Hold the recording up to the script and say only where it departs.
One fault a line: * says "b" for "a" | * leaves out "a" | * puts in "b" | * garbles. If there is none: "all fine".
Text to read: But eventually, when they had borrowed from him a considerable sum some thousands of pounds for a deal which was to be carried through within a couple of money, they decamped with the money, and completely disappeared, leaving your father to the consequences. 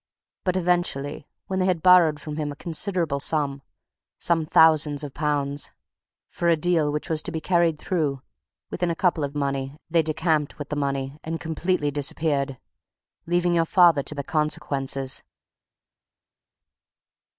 all fine